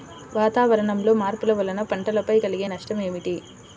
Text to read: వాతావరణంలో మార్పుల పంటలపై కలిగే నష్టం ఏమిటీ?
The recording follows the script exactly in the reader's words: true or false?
false